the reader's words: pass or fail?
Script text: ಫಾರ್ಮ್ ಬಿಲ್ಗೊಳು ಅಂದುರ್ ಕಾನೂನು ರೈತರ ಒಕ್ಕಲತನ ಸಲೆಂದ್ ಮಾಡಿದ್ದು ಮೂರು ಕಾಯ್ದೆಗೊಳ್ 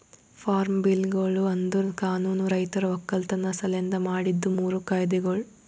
pass